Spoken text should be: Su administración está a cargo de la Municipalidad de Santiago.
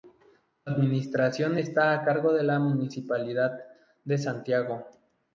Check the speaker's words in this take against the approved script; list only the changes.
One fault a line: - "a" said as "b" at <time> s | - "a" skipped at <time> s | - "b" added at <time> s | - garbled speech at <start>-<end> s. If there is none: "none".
none